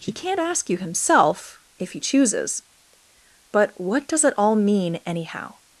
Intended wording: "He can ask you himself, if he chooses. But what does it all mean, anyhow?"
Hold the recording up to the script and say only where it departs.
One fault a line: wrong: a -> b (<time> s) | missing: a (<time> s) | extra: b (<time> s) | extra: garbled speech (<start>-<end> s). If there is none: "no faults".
wrong: can -> can't (0.1 s)